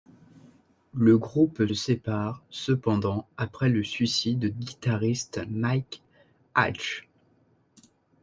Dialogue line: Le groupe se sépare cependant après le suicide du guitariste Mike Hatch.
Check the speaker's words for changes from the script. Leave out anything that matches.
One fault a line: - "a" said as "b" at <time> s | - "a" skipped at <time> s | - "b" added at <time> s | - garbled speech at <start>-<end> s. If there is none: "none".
- "se" skipped at 1.7 s
- "du" skipped at 4.5 s